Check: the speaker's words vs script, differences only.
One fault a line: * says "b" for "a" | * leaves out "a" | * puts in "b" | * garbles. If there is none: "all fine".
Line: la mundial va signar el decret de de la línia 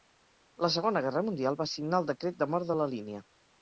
* puts in "segona guerra"
* puts in "mort"